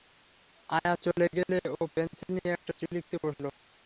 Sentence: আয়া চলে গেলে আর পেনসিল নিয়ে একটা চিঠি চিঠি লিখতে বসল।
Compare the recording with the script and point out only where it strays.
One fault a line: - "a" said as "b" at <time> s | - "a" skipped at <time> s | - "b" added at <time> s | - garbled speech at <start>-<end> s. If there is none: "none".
- "আর" said as "ও" at 1.7 s
- "চিঠি" skipped at 2.9 s